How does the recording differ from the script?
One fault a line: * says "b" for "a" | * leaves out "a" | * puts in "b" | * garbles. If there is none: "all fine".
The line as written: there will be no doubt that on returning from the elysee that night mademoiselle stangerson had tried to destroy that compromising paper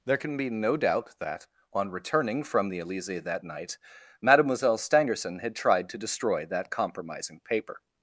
* says "can" for "will"